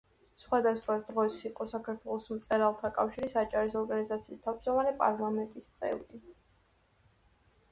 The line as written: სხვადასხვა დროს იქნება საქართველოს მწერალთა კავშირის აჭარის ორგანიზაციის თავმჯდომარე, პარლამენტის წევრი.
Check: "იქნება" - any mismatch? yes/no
yes